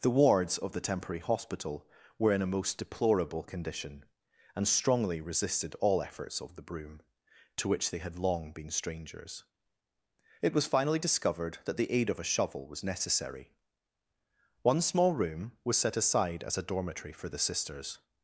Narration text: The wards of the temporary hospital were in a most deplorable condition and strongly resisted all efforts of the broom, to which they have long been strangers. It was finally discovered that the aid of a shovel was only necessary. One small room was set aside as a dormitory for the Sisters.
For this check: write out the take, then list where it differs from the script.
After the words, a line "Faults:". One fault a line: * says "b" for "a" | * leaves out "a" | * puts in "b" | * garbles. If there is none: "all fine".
The wards of the temporary hospital were in a most deplorable condition and strongly resisted all efforts of the broom, to which they had long been strangers. It was finally discovered that the aid of a shovel was necessary. One small room was set aside as a dormitory for the Sisters.
Faults:
* says "had" for "have"
* leaves out "only"